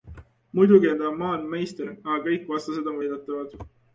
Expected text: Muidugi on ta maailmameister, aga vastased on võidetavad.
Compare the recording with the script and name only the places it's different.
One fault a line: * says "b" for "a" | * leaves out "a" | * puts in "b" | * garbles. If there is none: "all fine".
* puts in "kõik"